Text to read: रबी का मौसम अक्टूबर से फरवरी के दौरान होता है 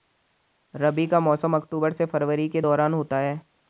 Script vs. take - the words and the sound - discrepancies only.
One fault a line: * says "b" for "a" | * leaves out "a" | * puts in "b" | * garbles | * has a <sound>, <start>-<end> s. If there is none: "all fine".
all fine